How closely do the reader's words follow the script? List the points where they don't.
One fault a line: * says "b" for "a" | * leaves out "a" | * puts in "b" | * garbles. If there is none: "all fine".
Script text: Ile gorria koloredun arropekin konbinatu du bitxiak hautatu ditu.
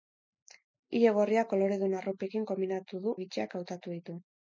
all fine